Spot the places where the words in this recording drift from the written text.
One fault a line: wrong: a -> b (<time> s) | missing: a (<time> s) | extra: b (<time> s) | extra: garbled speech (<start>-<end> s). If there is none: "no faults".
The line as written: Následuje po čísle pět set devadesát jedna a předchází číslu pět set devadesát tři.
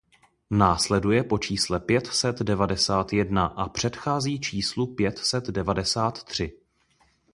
no faults